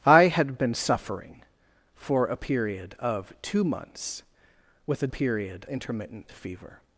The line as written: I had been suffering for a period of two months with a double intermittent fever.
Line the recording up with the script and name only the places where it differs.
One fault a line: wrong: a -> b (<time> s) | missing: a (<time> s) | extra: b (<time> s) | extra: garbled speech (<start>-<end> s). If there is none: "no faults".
wrong: double -> period (5.1 s)